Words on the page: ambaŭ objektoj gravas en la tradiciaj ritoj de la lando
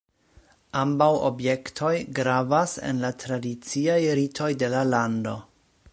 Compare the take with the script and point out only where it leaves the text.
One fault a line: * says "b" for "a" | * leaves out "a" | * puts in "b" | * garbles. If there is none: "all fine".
all fine